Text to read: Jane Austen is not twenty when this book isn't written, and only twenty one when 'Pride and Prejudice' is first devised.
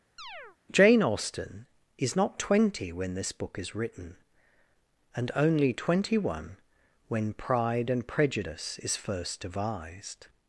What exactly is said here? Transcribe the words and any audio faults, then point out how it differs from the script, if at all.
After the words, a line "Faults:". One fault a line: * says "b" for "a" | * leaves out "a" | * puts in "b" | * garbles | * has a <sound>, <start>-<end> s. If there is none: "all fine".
Jane Austen is not twenty when this book is written, and only twenty one when 'Pride and Prejudice' is first devised.
Faults:
* has a chirp, 0.2-0.6 s
* says "is" for "isn't"